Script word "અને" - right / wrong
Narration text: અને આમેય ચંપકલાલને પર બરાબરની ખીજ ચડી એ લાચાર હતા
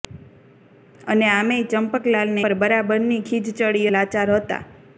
right